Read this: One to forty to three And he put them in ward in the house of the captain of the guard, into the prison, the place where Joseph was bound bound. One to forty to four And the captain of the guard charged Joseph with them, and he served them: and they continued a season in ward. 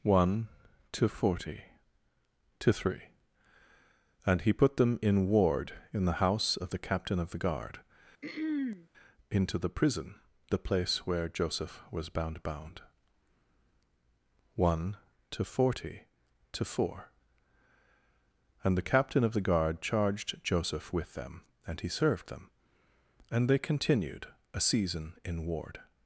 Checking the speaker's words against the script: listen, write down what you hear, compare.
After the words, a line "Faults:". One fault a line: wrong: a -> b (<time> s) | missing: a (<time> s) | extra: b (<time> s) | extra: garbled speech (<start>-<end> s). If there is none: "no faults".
One to forty to three And he put them in ward in the house of the captain of the guard, into the prison, the place where Joseph was bound bound. One to forty to four And the captain of the guard charged Joseph with them, and he served them: and they continued a season in ward.
Faults:
no faults